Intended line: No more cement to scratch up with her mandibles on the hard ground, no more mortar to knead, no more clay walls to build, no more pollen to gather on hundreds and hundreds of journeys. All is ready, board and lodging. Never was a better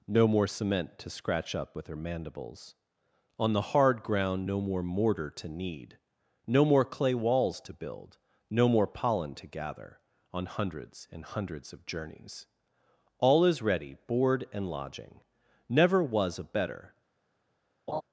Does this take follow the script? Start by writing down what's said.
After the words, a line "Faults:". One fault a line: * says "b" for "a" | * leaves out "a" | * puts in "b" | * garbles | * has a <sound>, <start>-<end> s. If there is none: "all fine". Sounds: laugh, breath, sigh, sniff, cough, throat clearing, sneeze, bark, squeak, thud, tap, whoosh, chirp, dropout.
No more cement to scratch up with her mandibles on the hard ground, no more mortar to knead, no more clay walls to build, no more pollen to gather on hundreds and hundreds of journeys. All is ready, board and lodging. Never was a better
Faults:
* has a laugh, 17.9-18.0 s